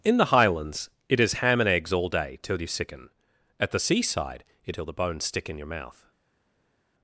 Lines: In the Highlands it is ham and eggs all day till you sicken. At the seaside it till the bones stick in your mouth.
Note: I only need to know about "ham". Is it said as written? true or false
true